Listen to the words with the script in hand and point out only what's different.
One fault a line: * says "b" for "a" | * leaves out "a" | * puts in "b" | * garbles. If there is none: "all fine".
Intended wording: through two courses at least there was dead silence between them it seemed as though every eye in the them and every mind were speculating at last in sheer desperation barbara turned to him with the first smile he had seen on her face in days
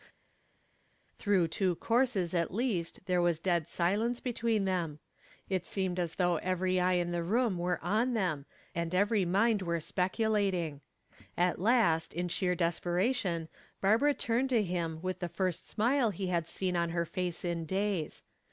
* puts in "room were on"